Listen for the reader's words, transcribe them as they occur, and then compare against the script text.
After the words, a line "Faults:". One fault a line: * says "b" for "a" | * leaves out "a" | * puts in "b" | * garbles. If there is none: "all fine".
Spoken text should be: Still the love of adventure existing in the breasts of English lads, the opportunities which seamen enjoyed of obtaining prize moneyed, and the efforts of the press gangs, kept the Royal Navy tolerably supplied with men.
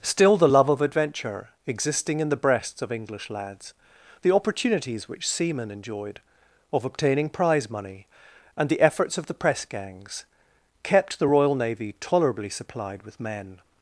Still the love of adventure existing in the breasts of English lads, the opportunities which seamen enjoyed of obtaining prize money, and the efforts of the press gangs, kept the Royal Navy tolerably supplied with men.
Faults:
* says "money" for "moneyed"